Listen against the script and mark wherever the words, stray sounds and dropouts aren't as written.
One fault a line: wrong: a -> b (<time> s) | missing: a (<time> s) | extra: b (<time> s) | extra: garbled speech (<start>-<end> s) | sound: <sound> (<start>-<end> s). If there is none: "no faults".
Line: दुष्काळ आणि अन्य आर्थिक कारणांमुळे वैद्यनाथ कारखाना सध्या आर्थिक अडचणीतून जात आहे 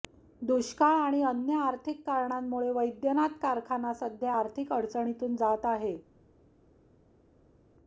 no faults